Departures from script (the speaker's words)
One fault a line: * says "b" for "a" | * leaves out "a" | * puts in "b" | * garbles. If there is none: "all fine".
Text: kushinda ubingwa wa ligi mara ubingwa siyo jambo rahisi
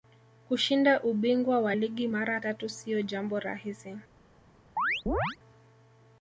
* says "tatu" for "ubingwa"